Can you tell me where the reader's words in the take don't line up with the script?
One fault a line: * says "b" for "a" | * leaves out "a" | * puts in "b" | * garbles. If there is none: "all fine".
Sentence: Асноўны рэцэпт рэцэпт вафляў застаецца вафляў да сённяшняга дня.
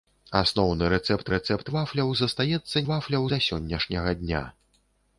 all fine